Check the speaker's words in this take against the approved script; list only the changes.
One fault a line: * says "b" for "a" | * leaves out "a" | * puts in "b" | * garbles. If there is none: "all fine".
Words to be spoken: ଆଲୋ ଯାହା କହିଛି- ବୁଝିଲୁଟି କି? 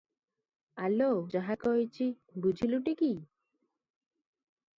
all fine